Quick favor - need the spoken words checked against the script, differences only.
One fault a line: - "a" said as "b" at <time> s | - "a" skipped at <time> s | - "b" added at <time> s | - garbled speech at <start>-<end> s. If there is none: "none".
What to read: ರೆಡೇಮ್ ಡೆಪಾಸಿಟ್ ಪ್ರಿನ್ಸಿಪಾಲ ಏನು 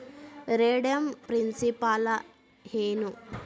- "ಡೆಪಾಸಿಟ್" skipped at 1.1 s